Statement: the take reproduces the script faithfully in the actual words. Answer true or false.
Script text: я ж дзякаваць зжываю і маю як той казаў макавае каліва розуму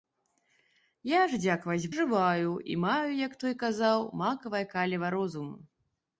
true